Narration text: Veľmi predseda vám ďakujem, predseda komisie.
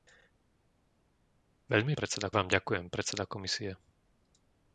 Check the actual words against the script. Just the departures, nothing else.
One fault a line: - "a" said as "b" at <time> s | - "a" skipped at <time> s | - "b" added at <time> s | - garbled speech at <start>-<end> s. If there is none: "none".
none